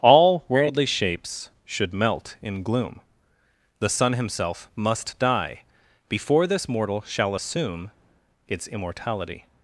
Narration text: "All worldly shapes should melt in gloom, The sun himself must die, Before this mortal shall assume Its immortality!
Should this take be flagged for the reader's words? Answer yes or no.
no